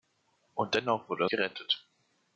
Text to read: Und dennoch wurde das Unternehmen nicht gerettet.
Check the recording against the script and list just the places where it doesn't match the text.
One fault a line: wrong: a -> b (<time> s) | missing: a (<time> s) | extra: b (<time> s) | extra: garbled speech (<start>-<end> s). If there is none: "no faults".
missing: das Unternehmen nicht (1.2 s)